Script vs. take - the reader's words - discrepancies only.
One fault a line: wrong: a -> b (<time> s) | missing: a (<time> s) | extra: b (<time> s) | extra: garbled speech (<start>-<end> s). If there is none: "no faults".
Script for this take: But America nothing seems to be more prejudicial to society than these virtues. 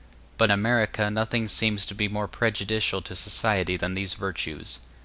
no faults